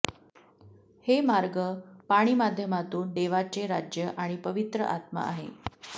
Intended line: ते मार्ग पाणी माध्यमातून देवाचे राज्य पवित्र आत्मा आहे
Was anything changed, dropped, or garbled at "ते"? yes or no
yes